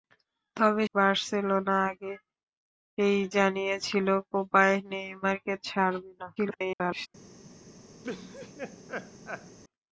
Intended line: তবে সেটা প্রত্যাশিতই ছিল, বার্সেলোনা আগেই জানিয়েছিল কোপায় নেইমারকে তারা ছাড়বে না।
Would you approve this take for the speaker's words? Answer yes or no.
no